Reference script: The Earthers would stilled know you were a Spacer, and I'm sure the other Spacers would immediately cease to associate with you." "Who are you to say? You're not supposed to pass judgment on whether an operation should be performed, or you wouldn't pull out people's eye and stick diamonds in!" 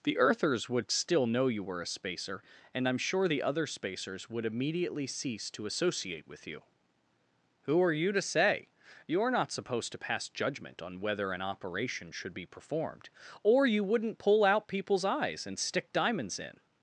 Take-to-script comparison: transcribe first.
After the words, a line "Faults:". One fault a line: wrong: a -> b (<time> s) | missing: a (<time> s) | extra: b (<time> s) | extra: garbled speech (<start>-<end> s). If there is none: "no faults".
The Earthers would still know you were a Spacer, and I'm sure the other Spacers would immediately cease to associate with you." "Who are you to say? You're not supposed to pass judgment on whether an operation should be performed, or you wouldn't pull out people's eyes and stick diamonds in!"
Faults:
wrong: stilled -> still (0.9 s)
wrong: eye -> eyes (15.0 s)